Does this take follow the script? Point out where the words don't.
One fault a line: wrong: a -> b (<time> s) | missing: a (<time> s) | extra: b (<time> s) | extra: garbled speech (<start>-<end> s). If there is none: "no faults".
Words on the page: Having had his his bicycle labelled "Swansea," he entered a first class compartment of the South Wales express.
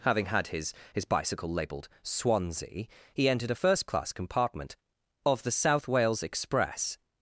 no faults